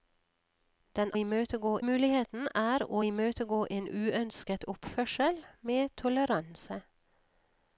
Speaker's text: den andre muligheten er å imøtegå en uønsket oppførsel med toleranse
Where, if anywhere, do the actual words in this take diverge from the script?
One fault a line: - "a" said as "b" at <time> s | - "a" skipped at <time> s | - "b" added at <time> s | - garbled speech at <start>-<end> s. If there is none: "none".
- "andre" said as "imøtegå" at 1.2 s